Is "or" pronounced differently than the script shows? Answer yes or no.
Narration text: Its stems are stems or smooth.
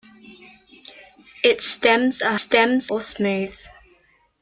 no